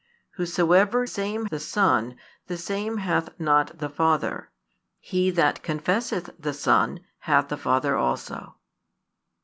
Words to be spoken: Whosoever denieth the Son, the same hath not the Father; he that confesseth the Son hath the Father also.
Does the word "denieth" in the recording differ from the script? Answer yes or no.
yes